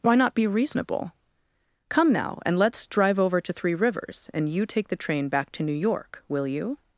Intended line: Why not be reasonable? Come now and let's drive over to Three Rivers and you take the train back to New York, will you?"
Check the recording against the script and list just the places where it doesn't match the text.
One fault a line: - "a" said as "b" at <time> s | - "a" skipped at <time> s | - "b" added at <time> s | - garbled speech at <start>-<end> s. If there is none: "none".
none